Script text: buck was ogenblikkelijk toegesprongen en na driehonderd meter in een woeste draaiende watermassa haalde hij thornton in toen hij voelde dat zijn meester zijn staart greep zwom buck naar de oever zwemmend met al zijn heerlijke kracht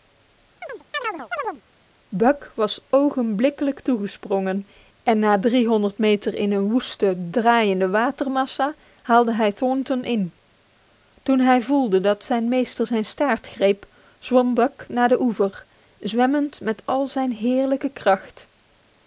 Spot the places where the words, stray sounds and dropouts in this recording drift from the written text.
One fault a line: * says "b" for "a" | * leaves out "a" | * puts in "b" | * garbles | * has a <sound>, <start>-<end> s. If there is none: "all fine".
* has a chirp, 0.6-1.6 s